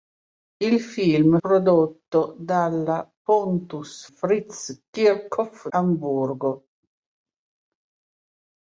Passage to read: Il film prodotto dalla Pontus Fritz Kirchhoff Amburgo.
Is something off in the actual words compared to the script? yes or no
no